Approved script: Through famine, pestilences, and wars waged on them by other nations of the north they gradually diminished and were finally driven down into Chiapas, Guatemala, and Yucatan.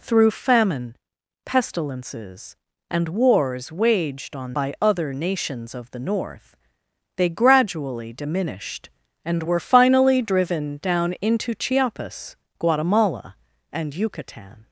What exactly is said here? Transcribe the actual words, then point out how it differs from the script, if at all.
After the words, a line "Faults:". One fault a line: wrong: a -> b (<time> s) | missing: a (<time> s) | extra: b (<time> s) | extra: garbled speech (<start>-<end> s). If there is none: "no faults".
Through famine, pestilences, and wars waged on by other nations of the north they gradually diminished and were finally driven down into Chiapas, Guatemala, and Yucatan.
Faults:
missing: them (4.5 s)